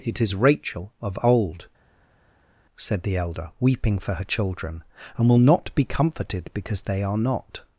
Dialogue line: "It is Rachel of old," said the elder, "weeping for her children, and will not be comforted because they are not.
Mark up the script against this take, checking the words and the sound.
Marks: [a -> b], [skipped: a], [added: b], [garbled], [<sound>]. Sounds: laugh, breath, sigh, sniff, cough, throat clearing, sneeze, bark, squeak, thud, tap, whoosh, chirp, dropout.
"It is Rachel of old," said the elder, "weeping for her children, and will not be comforted because they are not.